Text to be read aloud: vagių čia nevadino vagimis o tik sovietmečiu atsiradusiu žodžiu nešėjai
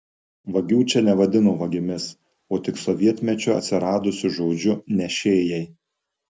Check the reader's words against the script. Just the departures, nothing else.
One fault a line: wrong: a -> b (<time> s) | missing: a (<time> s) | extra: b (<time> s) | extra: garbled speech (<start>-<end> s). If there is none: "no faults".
no faults